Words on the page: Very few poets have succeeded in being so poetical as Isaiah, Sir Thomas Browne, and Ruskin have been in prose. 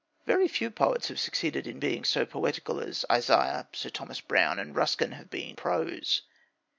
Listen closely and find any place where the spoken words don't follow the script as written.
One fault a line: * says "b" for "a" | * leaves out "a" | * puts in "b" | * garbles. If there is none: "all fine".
* leaves out "in"